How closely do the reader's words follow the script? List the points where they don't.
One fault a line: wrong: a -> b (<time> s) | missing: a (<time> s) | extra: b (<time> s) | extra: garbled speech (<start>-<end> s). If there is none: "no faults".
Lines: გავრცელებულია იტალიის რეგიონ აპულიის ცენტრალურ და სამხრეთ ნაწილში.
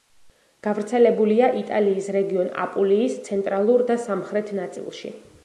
no faults